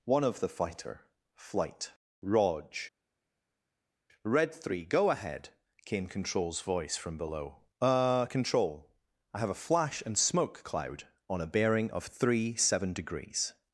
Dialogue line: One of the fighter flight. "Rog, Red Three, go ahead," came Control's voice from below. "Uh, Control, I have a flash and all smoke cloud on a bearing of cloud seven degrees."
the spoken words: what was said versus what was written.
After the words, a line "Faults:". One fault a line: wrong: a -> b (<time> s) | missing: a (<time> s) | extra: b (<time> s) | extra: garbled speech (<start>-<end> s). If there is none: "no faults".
One of the fighter flight. "Rog, Red Three, go ahead," came Control's voice from below. "Uh, Control, I have a flash and smoke cloud on a bearing of three seven degrees."
Faults:
missing: all (10.2 s)
wrong: cloud -> three (12.0 s)